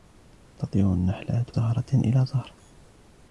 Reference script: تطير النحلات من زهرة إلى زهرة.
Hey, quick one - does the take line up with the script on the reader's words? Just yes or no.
no